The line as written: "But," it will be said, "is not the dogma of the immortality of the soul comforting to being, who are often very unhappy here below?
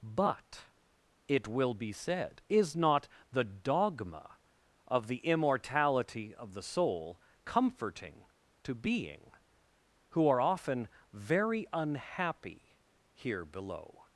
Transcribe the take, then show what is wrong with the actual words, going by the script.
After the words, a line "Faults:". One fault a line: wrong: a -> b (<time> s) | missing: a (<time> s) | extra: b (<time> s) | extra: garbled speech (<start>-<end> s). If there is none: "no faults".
"But," it will be said, "is not the dogma of the immortality of the soul comforting to being, who are often very unhappy here below?
Faults:
no faults